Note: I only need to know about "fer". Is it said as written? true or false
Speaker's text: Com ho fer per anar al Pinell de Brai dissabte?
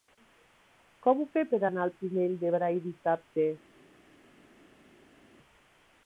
true